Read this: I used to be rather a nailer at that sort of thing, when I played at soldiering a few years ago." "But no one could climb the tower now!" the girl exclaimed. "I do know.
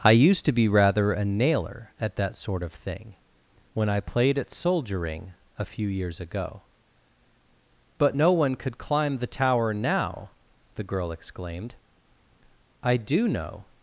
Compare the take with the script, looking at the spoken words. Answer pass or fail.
pass